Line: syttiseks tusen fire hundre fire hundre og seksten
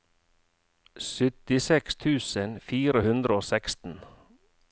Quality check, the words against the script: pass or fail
fail